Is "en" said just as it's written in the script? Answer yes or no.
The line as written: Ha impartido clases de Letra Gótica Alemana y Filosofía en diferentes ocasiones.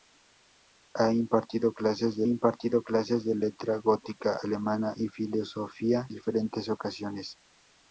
no